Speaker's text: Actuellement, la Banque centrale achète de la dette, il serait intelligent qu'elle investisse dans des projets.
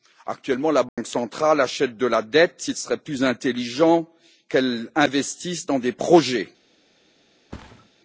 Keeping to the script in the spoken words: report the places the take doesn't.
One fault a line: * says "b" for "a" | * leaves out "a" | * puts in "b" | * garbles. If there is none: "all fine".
* puts in "plus"